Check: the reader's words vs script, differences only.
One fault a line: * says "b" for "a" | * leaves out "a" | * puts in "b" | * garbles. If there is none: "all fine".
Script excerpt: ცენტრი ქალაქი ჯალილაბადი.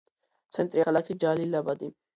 all fine